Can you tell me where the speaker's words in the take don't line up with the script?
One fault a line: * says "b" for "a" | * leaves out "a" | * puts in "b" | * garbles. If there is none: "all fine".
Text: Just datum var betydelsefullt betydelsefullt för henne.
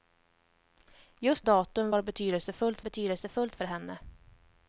all fine